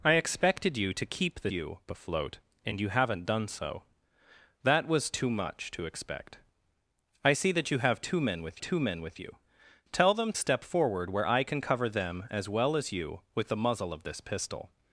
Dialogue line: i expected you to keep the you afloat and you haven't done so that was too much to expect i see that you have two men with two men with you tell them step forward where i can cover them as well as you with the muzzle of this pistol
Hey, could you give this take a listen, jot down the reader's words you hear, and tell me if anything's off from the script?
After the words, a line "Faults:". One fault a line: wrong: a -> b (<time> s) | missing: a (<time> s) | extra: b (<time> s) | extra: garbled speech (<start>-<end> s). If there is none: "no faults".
i expected you to keep the you afloat and you haven't done so that was too much to expect i see that you have two men with two men with you tell them step forward where i can cover them as well as you with the muzzle of this pistol
Faults:
no faults